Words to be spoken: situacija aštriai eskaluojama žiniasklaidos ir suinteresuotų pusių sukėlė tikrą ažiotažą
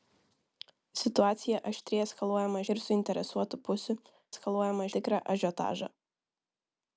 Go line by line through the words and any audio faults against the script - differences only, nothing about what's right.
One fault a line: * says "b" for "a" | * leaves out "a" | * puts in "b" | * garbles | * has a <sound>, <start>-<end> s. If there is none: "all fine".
* leaves out "žiniasklaidos"
* says "eskaluojama" for "sukėlė"